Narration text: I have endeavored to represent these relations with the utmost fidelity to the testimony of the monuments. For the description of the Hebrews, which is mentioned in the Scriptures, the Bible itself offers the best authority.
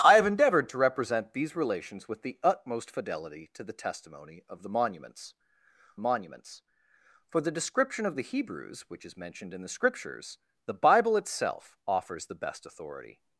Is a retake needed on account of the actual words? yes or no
yes